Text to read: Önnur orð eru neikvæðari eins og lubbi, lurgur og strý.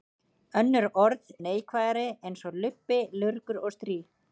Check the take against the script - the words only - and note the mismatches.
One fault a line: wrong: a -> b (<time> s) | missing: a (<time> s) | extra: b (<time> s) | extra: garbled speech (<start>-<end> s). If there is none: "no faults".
missing: eru (1.3 s)